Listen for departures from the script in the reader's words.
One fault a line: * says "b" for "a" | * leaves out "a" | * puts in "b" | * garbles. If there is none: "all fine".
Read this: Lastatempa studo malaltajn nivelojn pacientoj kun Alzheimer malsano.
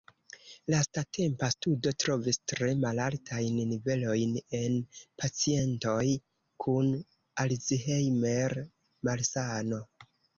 * puts in "trovis tre"
* puts in "en"